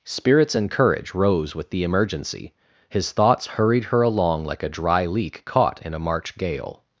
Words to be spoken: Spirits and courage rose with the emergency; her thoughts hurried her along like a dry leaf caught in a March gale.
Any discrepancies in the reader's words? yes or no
yes